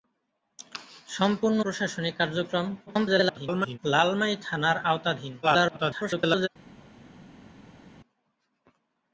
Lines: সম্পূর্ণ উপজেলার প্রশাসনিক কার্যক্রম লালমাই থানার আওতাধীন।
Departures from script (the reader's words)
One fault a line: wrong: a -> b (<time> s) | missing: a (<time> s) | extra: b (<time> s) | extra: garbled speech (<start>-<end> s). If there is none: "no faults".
missing: উপজেলার (1.6 s)
extra: garbled speech (2.9-3.8 s)
extra: garbled speech (5.4-6.5 s)